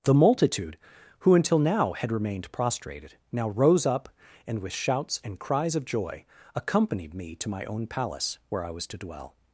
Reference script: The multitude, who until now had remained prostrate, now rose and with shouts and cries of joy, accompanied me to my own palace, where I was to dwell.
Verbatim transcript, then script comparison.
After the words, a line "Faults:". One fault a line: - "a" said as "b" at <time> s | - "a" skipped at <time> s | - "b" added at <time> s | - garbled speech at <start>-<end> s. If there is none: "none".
The multitude, who until now had remained prostrated, now rose up, and with shouts and cries of joy, accompanied me to my own palace, where I was to dwell.
Faults:
- "prostrate" said as "prostrated" at 2.5 s
- "up" added at 3.9 s